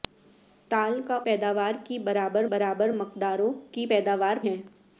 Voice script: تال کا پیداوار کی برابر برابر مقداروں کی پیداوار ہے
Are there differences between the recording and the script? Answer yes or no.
no